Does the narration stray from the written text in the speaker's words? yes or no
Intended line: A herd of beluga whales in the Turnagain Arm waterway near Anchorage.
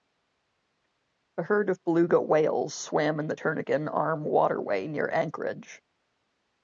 yes